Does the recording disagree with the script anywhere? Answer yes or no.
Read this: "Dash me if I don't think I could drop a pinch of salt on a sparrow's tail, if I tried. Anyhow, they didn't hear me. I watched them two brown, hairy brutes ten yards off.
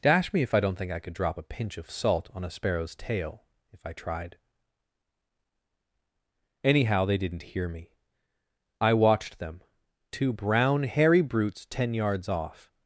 no